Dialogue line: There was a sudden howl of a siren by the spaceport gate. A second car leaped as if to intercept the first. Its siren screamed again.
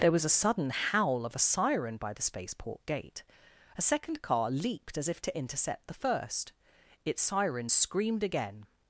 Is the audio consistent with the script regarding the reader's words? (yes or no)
yes